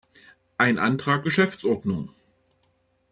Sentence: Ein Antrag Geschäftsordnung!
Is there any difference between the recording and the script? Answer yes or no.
no